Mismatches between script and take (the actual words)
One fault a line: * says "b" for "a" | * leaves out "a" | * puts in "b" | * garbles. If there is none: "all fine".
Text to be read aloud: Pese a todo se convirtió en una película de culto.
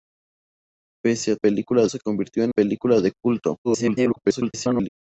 * says "película" for "todo"
* leaves out "una"
* garbles